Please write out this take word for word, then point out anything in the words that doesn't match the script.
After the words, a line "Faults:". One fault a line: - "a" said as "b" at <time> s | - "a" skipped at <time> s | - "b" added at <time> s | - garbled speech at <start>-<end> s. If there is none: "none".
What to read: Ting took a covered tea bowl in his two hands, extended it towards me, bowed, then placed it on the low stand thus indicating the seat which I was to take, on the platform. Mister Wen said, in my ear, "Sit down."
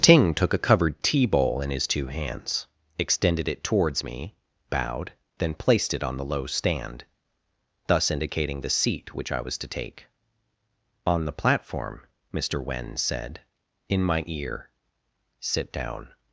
Ting took a covered tea bowl in his two hands, extended it towards me, bowed, then placed it on the low stand thus indicating the seat which I was to take, on the platform. Mister Wen said, in my ear, "Sit down."
Faults:
none